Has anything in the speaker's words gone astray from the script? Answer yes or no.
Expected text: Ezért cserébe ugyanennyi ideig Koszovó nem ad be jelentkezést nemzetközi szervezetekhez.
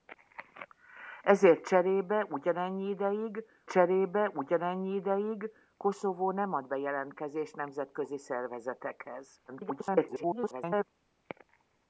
yes